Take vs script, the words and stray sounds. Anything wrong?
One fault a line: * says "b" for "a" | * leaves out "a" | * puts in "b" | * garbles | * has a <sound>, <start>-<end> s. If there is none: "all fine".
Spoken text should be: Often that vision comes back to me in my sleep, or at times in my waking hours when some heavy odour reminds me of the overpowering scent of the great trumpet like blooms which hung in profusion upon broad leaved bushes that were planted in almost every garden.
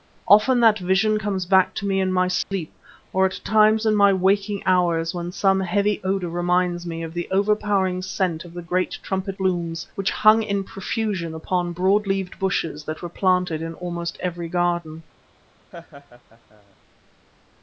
* has a dropout, 2.4-2.5 s
* leaves out "like"
* has a laugh, 15.7-16.8 s